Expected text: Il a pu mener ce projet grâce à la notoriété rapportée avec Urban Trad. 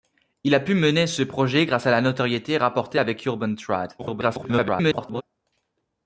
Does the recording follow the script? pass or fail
fail